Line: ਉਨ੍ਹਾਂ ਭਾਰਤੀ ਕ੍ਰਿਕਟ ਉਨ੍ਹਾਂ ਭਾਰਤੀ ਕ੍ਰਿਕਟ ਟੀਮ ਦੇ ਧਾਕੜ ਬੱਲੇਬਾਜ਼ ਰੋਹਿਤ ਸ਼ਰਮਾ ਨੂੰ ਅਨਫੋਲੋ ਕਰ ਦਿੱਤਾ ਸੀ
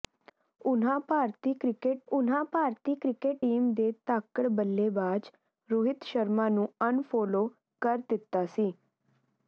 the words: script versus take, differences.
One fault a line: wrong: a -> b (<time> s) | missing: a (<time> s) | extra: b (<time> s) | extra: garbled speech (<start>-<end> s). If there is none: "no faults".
no faults